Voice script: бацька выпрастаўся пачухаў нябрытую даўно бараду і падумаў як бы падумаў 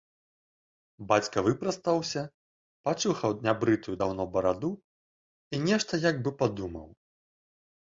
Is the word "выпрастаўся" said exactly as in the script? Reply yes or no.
yes